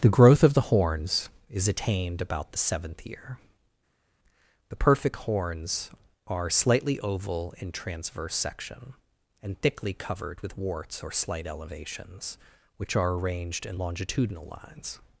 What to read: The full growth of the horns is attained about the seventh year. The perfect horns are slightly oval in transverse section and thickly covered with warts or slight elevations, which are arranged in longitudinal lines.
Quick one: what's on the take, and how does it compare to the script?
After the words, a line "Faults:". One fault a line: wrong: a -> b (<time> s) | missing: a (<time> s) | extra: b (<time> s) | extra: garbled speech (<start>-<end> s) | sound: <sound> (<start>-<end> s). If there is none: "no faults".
The growth of the horns is attained about the seventh year. The perfect horns are slightly oval in transverse section and thickly covered with warts or slight elevations, which are arranged in longitudinal lines.
Faults:
missing: full (0.2 s)